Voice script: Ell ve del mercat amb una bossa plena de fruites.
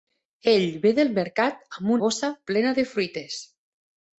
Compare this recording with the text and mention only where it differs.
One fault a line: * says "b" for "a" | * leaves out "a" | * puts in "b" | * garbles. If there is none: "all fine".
* leaves out "una"